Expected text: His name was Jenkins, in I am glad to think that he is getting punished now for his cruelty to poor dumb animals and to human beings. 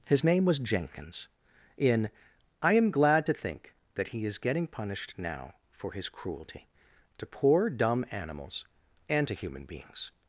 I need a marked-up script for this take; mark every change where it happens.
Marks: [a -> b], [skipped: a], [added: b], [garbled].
His name was Jenkins, in I am glad to think that he is getting punished now for his cruelty to poor dumb animals and to human beings.